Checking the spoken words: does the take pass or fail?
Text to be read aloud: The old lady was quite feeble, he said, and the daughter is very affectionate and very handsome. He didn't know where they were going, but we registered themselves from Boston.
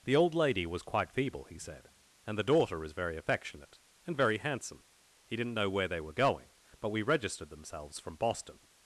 pass